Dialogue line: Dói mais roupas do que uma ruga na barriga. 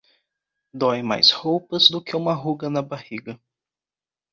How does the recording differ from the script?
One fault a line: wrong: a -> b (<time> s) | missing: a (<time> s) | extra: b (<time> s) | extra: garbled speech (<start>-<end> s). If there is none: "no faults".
no faults